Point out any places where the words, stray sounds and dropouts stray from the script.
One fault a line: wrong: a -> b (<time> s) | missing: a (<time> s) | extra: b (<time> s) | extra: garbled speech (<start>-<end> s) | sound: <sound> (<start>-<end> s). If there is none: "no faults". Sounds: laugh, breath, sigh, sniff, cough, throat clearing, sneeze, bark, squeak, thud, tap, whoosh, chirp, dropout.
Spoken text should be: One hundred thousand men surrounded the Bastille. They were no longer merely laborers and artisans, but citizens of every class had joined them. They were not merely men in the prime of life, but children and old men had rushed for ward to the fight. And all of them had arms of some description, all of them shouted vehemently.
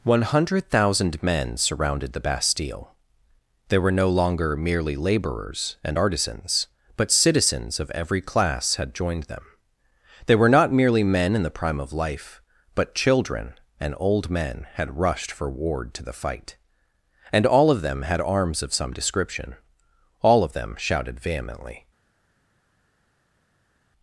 no faults